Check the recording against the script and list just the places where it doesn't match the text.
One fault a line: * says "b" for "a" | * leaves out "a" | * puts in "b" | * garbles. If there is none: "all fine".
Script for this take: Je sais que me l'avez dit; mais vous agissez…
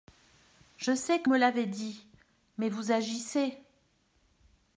all fine